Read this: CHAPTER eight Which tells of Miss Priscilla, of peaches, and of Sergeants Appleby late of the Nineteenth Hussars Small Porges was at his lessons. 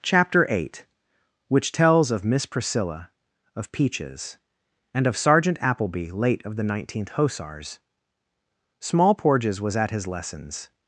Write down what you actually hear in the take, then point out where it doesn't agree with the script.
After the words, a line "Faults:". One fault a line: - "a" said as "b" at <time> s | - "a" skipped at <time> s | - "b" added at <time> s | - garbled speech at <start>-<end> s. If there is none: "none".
CHAPTER eight Which tells of Miss Priscilla, of peaches, and of Sergeant Appleby late of the Nineteenth Hussars Small Porges was at his lessons.
Faults:
- "Sergeants" said as "Sergeant" at 5.2 s